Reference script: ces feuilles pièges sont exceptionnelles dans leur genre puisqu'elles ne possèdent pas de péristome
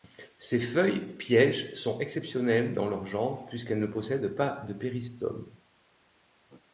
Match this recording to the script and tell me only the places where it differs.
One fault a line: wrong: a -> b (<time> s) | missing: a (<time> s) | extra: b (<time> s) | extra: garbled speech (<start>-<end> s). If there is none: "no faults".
no faults